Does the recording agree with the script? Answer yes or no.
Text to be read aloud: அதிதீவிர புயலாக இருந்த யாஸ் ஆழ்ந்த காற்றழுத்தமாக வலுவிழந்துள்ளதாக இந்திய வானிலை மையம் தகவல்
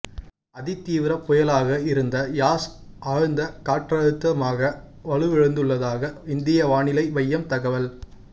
yes